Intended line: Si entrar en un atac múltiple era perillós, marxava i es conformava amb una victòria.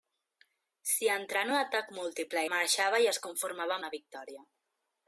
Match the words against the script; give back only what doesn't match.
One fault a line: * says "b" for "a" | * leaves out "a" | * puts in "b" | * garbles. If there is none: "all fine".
* leaves out "era perillós"
* leaves out "amb"